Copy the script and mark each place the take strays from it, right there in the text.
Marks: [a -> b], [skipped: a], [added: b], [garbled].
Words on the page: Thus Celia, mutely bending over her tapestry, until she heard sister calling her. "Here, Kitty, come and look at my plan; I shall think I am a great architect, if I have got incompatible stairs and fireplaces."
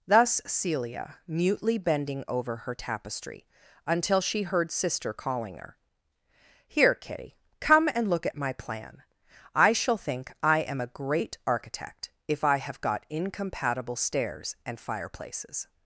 Thus Celia, mutely bending over her tapestry, until she heard sister calling her. "Here, Kitty, come and look at my plan; I shall think I am a great architect, if I have got incompatible stairs and fireplaces."